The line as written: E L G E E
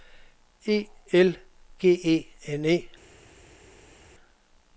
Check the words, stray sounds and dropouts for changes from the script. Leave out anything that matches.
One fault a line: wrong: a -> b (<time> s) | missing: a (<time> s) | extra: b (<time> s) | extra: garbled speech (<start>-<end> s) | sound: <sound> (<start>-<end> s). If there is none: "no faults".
extra: N (2.5 s)